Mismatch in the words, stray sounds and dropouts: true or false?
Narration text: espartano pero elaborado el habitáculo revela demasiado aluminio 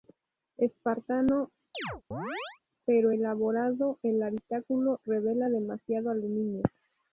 true